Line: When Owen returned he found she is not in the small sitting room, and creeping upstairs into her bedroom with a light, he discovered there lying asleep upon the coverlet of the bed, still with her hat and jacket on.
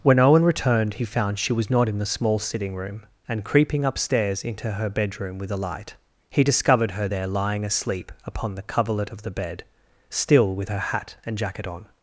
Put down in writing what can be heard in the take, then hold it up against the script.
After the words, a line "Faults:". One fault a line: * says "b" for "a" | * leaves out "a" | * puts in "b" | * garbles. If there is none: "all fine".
When Owen returned he found she was not in the small sitting room, and creeping upstairs into her bedroom with a light, he discovered her there lying asleep upon the coverlet of the bed, still with her hat and jacket on.
Faults:
* says "was" for "is"
* puts in "her"